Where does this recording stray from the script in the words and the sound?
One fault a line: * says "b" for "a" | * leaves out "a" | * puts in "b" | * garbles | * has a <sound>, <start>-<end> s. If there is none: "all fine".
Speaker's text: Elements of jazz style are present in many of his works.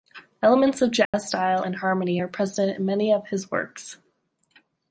* has a dropout, 1.0-1.1 s
* puts in "and harmony"